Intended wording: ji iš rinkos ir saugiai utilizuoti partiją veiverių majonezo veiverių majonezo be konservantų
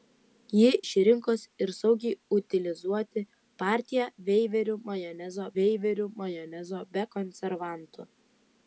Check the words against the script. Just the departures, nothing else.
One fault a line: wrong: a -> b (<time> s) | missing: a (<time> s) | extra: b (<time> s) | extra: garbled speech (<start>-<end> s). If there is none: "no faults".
no faults